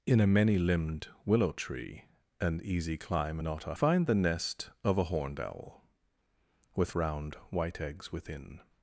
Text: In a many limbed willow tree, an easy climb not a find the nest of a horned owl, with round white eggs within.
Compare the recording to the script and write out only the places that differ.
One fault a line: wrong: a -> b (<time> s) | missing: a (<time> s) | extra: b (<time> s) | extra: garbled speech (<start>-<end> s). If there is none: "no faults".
no faults